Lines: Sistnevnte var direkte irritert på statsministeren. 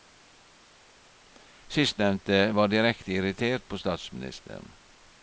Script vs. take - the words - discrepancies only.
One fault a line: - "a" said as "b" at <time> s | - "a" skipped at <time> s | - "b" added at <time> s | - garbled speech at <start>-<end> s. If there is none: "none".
none